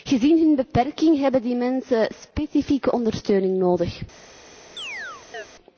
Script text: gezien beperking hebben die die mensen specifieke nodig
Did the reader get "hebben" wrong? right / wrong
right